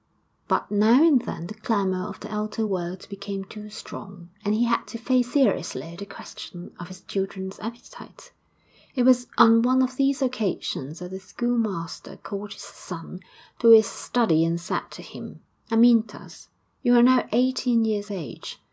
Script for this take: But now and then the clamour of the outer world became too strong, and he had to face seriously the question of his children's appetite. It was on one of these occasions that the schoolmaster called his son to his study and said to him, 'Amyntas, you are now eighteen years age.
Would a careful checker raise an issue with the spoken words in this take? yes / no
no